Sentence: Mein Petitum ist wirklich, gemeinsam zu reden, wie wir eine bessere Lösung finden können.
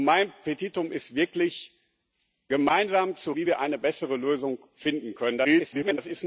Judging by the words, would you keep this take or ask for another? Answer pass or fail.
fail